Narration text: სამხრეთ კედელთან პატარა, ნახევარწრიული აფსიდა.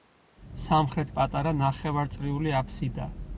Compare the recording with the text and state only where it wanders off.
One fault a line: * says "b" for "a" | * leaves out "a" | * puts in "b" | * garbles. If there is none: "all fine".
* leaves out "კედელთან"